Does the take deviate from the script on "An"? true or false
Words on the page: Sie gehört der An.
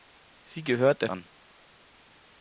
false